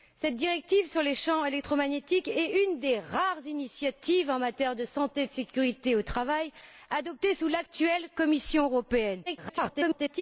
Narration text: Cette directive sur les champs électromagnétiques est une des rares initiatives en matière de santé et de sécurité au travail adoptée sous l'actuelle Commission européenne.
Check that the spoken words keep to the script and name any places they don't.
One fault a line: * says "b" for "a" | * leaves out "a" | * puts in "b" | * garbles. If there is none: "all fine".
* garbles